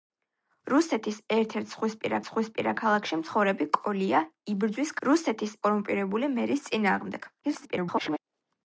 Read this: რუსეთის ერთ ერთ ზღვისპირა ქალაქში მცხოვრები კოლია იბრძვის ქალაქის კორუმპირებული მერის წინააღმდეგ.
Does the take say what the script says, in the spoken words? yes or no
no